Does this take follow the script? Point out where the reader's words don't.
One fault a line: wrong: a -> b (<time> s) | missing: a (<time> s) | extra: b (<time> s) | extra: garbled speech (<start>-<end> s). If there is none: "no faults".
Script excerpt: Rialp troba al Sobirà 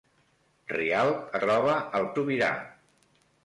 no faults